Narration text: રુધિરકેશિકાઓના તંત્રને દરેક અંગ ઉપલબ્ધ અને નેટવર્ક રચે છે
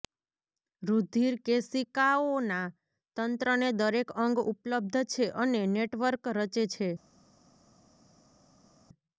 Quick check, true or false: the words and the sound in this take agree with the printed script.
false